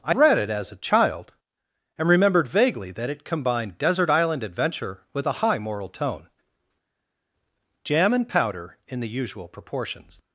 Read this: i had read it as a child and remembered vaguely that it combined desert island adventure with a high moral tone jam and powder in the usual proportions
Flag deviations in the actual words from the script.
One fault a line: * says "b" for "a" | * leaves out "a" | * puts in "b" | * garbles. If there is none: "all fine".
* leaves out "had"